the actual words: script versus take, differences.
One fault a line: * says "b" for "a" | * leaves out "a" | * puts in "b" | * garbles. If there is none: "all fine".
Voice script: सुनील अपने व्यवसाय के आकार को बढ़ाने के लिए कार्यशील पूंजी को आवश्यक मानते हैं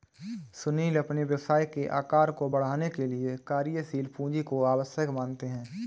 all fine